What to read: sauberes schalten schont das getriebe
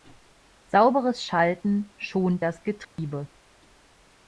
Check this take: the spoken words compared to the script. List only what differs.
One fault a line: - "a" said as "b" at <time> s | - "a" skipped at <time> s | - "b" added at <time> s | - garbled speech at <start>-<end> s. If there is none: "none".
none